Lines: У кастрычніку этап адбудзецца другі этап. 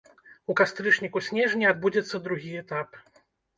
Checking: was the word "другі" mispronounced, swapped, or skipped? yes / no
no